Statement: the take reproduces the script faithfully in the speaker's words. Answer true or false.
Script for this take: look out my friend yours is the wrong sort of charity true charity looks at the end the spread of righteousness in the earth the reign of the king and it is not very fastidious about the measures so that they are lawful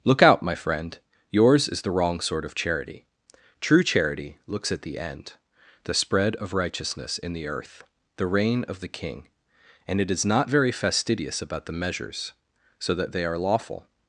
true